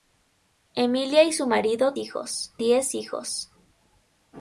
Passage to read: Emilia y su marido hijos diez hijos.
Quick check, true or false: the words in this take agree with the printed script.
true